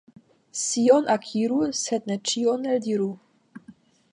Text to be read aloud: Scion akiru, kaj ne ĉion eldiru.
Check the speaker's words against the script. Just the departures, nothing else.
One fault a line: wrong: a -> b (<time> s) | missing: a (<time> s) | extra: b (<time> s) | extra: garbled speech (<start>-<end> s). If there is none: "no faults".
wrong: kaj -> sed (1.8 s)